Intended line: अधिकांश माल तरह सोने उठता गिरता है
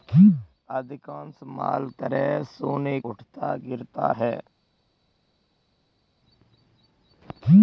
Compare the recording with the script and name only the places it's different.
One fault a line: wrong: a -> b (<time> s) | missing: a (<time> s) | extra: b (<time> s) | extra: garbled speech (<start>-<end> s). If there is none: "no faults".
no faults